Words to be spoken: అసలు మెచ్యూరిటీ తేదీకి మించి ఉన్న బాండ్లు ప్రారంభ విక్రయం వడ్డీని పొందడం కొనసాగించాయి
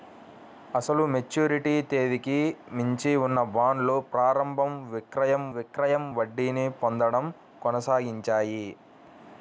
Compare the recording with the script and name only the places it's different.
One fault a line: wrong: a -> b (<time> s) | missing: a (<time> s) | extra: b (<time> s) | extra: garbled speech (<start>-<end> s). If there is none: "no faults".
extra: విక్రయం (5.6 s)